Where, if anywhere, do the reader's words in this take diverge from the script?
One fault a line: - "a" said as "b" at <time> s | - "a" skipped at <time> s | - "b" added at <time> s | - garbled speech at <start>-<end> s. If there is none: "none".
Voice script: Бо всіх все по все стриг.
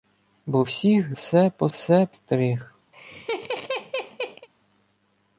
none